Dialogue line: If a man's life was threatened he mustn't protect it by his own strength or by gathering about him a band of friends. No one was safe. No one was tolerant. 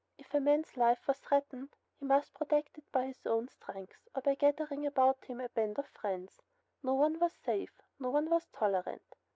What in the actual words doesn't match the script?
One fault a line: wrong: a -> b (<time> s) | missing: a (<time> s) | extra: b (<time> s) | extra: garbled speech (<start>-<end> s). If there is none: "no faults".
wrong: mustn't -> must (2.0 s)